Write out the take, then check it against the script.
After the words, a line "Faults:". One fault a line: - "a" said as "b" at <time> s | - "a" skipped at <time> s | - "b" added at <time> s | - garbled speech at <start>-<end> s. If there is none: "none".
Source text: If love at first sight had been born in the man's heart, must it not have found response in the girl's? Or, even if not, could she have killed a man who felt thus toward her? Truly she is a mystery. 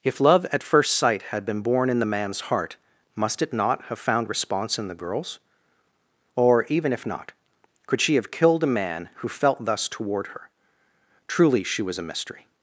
If love at first sight had been born in the man's heart, must it not have found response in the girl's? Or, even if not, could she have killed a man who felt thus toward her? Truly she was a mystery.
Faults:
- "is" said as "was" at 11.8 s